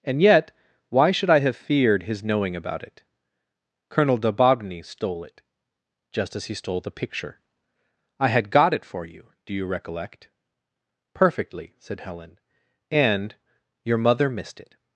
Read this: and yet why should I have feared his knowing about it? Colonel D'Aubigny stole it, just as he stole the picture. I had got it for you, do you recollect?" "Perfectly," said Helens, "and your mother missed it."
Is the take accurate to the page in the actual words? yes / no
no